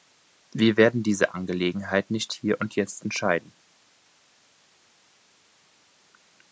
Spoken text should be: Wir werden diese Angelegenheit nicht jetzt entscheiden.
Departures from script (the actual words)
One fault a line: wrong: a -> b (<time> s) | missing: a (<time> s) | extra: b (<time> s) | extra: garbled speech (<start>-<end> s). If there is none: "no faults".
extra: hier und (2.3 s)